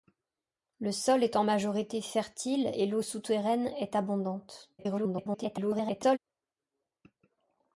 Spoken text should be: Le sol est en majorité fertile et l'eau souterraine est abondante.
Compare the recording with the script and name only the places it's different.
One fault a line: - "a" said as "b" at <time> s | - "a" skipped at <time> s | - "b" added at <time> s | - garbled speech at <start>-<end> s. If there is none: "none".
- garbled speech at 4.8-6.2 s